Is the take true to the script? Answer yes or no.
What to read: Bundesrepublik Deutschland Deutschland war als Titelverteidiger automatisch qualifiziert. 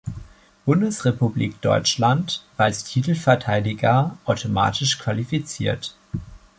no